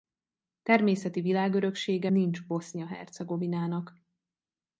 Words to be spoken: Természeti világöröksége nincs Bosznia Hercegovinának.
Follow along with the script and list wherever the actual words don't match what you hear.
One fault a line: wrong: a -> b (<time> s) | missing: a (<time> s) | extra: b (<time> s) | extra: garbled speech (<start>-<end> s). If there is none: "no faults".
no faults